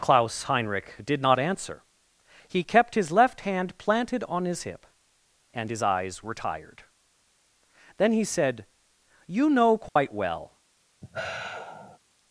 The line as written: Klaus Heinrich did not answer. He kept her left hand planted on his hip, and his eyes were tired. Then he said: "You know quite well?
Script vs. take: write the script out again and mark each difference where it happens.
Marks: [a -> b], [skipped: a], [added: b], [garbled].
Klaus Heinrich did not answer. He kept [her -> his] left hand planted on his hip, and his eyes were tired. Then he said: "You know quite well?